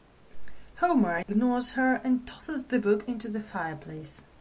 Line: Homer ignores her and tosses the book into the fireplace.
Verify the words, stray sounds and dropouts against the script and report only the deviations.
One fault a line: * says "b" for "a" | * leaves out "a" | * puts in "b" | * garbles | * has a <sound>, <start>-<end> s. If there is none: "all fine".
* has a dropout, 1.2-1.3 s